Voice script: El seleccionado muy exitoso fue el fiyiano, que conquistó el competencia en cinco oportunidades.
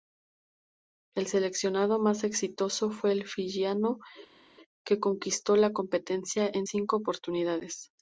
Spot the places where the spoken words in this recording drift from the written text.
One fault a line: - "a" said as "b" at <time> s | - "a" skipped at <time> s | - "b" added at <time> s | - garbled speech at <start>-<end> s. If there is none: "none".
- "muy" said as "más" at 2.0 s
- "el" said as "la" at 5.5 s